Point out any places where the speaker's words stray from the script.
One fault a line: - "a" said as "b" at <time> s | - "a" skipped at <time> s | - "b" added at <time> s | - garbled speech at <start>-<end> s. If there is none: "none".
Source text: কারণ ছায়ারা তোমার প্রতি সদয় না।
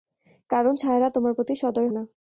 none